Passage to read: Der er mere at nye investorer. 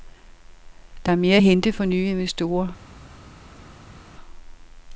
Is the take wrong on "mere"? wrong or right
right